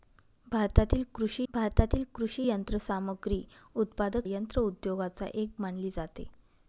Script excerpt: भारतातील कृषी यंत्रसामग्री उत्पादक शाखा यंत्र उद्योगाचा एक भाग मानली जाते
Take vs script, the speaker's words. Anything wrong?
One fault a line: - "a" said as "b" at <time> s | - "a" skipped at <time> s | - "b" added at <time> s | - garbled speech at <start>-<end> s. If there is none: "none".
- "भारतातील कृषी" added at 1.5 s
- "शाखा" skipped at 4.3 s
- "भाग" skipped at 5.5 s